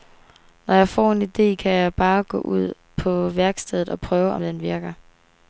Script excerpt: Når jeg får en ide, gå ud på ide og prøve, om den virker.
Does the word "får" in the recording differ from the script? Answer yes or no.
no